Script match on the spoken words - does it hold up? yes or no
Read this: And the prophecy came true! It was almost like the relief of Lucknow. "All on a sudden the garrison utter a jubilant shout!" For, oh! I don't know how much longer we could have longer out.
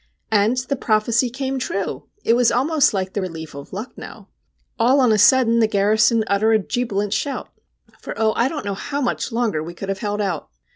no